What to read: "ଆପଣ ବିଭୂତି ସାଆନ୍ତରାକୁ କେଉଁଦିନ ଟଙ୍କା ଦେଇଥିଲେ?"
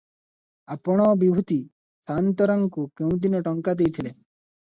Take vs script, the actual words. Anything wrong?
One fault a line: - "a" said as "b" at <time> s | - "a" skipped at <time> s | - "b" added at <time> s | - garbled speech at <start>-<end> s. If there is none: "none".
none